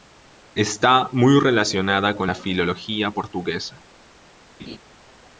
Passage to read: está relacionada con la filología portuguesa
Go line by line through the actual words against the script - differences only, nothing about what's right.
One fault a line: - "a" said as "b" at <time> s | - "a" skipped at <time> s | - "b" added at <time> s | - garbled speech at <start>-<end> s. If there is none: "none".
- "muy" added at 1.1 s